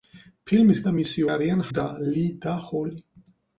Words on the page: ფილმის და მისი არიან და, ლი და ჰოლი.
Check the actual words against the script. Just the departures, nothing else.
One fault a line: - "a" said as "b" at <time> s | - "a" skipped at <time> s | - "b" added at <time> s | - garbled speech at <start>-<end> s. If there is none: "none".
none